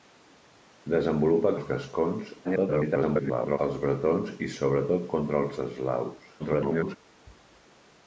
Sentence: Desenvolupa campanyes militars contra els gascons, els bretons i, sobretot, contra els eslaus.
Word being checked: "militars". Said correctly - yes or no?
no